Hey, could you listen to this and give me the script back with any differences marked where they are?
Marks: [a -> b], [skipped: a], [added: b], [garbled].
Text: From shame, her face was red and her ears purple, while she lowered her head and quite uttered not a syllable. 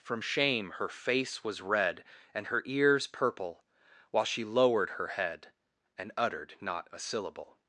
From shame, her face was red and her ears purple, while she lowered her head and [skipped: quite] uttered not a syllable.